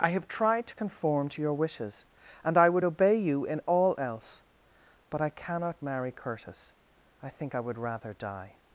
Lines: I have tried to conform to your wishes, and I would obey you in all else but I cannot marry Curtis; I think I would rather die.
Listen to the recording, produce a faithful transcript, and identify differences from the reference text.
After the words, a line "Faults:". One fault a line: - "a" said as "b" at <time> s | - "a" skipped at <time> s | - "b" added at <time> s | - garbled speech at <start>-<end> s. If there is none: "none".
I have tried to conform to your wishes, and I would obey you in all else but I cannot marry Curtis; I think I would rather die.
Faults:
none